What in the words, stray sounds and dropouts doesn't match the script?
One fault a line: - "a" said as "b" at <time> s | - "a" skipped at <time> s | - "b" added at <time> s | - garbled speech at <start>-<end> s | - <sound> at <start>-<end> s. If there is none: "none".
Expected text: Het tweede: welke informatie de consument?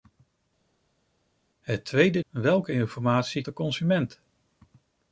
none